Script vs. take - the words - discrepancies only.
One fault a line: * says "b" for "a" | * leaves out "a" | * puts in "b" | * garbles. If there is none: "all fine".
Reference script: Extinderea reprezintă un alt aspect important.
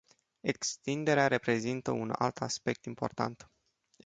all fine